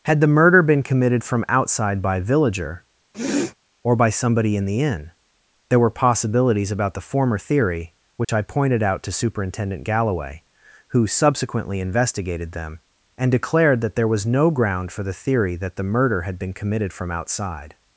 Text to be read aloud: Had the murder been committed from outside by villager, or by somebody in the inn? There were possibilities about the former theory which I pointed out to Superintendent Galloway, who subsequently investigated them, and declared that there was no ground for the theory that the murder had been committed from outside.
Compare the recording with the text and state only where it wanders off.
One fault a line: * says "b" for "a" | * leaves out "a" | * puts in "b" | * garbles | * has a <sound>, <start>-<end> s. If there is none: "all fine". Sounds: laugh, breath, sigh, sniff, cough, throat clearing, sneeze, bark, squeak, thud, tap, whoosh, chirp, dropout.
* has a sniff, 3.1-3.5 s
* has a dropout, 8.2-8.3 s